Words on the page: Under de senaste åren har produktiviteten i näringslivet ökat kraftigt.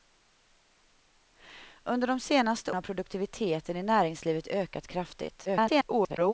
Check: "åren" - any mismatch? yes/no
yes